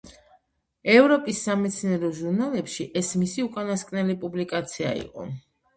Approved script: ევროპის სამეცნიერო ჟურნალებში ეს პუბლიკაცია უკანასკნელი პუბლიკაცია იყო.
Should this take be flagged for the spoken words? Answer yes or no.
yes